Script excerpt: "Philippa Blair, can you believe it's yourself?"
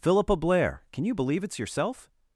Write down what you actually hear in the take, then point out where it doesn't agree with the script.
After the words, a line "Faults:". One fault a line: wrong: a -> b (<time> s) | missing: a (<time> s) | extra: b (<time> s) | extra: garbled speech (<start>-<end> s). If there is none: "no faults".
"Philippa Blair, can you believe it's yourself?"
Faults:
no faults